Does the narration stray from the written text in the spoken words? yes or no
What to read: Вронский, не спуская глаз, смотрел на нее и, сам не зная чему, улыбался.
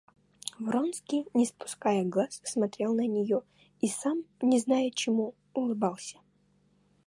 no